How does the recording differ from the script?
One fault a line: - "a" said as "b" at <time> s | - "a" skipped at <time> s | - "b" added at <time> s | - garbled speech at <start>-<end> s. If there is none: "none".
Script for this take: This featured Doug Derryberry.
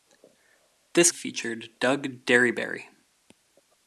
none